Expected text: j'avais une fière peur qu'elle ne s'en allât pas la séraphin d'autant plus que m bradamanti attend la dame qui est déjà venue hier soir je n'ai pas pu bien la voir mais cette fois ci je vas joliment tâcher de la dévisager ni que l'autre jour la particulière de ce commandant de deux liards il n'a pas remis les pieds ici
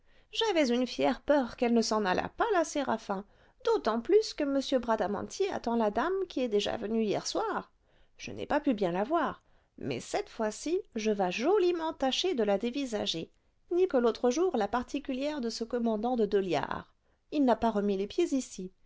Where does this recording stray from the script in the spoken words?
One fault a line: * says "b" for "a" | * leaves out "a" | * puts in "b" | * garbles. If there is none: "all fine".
all fine